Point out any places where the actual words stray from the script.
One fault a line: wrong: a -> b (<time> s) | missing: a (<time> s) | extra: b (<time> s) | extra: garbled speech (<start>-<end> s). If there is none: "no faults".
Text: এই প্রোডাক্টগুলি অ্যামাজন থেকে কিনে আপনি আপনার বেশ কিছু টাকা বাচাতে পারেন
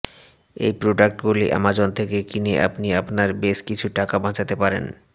no faults